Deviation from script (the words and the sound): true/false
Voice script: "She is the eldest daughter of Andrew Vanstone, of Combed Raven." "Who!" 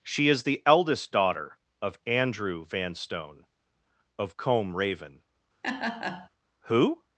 true